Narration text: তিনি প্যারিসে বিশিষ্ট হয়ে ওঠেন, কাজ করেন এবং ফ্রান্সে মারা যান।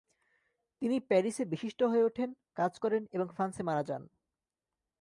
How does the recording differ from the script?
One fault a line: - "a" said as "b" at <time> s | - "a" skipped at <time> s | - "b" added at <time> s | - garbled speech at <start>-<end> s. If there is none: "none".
none